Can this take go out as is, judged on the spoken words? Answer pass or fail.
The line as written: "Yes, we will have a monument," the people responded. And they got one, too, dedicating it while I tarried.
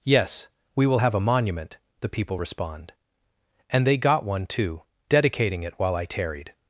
fail